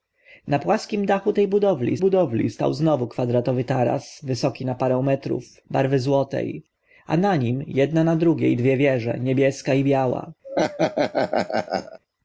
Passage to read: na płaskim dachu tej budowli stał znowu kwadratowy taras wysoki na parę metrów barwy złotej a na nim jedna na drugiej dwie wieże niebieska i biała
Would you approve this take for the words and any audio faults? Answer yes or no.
no